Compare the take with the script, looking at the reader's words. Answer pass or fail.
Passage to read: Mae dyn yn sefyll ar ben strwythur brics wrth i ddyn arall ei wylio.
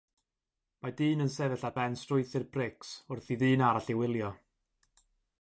pass